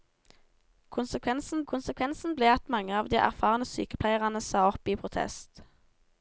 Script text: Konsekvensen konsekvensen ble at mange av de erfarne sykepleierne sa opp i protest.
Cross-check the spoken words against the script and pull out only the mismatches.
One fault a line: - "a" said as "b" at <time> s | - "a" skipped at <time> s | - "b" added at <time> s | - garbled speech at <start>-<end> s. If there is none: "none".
none